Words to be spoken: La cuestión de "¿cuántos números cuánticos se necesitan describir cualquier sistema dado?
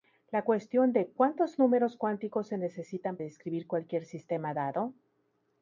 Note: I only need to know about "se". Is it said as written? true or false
true